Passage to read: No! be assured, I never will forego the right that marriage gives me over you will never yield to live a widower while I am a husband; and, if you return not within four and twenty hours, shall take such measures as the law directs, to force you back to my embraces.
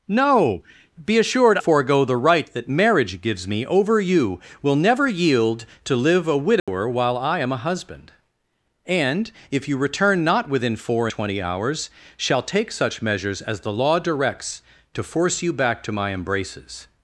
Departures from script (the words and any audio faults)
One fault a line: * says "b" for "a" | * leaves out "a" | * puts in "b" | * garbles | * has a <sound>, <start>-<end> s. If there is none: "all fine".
* leaves out "I never will"
* has a dropout, 6.6-6.7 s
* leaves out "and"